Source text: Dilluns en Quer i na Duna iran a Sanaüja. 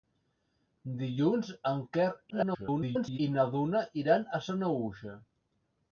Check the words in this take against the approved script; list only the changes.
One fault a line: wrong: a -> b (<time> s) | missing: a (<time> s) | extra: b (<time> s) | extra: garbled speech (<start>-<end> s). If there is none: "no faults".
extra: garbled speech (2.3-3.2 s)